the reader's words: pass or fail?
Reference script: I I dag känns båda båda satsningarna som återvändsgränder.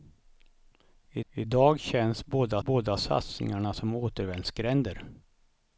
pass